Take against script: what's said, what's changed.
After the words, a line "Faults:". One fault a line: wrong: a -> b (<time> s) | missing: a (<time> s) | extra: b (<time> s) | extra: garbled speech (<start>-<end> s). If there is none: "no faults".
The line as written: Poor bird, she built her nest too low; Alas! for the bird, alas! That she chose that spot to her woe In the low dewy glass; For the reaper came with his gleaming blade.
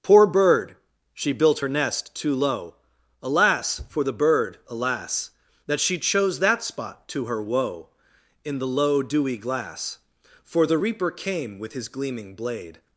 Poor bird, she built her nest too low; Alas! for the bird, alas! That she chose that spot to her woe In the low dewy glass; For the reaper came with his gleaming blade.
Faults:
no faults